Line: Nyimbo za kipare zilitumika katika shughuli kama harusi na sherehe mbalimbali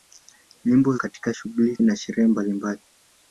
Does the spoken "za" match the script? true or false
false